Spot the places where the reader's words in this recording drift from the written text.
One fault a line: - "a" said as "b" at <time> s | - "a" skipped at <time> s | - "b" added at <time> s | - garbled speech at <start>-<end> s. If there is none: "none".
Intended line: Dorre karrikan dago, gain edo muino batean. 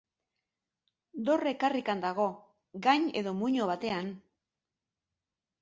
none